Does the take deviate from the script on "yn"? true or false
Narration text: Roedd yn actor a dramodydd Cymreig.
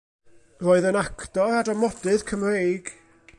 false